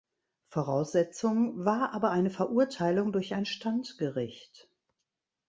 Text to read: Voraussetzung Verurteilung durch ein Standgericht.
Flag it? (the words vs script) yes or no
yes